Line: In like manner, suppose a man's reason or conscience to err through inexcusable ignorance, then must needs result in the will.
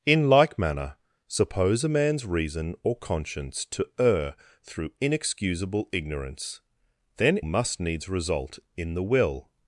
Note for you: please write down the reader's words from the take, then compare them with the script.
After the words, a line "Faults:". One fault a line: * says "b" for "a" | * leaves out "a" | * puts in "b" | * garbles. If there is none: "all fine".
In like manner, suppose a man's reason or conscience to err through inexcusable ignorance, then must needs result in the will.
Faults:
all fine